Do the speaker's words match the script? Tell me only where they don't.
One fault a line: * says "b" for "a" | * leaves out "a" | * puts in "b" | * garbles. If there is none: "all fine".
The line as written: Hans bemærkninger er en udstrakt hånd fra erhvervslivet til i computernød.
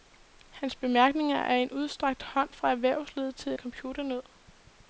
all fine